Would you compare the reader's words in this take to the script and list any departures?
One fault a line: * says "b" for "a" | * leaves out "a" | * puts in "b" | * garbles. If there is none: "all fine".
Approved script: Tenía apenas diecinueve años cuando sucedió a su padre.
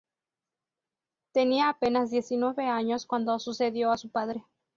all fine